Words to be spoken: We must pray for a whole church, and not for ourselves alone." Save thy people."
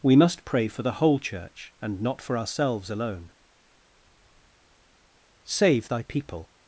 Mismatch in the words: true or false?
true